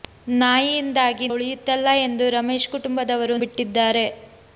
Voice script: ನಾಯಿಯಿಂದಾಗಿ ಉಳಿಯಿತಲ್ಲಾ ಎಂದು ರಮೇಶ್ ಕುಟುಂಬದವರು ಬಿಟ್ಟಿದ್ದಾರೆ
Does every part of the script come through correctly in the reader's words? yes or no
yes